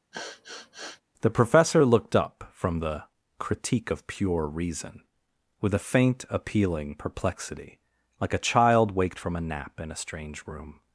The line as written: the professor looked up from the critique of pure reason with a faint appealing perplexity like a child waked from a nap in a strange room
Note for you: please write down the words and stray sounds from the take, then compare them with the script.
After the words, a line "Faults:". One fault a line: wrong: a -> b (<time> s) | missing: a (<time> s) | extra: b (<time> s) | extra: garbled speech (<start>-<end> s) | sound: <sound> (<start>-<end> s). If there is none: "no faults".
the professor looked up from the critique of pure reason with a faint appealing perplexity like a child waked from a nap in a strange room
Faults:
sound: sniff (0.1-1.0 s)